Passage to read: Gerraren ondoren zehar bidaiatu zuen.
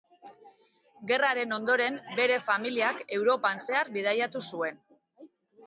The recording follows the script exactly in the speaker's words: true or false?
false